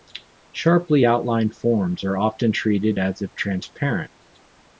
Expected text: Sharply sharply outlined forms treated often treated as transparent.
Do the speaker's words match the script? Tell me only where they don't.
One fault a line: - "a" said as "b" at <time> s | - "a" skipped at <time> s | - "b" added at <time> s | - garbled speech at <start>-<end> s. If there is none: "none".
- "sharply" skipped at 1.1 s
- "treated" said as "are" at 2.0 s
- "if" added at 3.2 s